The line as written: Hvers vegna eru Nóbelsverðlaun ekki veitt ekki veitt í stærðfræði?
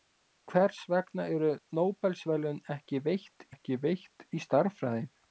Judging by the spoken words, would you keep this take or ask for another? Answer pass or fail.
pass